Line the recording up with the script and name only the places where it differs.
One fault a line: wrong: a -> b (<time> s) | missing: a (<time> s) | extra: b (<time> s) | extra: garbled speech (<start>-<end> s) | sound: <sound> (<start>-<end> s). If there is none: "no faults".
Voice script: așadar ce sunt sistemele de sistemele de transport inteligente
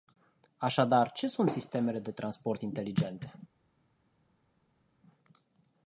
missing: sistemele de (2.1 s)